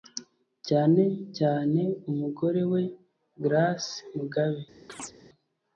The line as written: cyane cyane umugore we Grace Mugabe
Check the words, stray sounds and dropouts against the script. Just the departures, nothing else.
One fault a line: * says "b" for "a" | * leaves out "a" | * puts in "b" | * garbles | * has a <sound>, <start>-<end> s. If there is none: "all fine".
* has a chirp, 4.9-5.1 s